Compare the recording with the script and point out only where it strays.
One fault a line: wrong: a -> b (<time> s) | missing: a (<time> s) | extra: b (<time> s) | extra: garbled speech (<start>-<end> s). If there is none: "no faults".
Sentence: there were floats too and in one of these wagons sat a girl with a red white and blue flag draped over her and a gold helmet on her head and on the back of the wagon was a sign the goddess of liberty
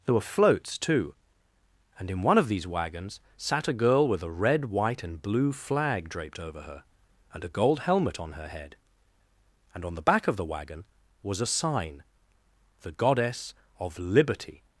no faults